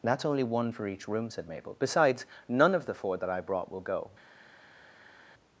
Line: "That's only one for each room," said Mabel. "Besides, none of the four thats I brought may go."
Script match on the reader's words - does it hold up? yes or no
no